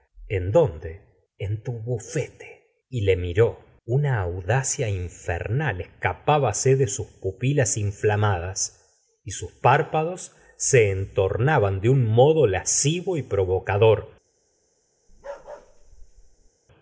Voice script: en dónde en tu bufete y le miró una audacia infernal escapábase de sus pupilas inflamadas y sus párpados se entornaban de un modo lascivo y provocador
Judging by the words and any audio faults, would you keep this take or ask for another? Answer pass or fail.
fail